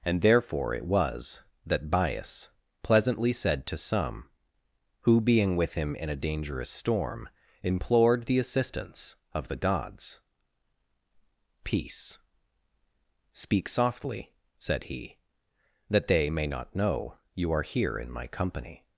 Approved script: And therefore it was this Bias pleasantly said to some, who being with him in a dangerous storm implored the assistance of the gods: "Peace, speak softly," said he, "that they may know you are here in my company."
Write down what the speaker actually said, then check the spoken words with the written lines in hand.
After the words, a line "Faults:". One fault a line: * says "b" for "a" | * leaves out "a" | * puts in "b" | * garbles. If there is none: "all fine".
And therefore it was that Bias pleasantly said to some, who being with him in a dangerous storm implored the assistance of the gods: "Peace, speak softly," said he, "that they may not know you are here in my company."
Faults:
* says "that" for "this"
* puts in "not"